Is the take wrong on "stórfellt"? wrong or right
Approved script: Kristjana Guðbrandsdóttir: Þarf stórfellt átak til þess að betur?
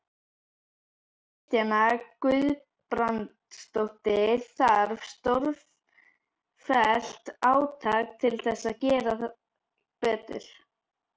right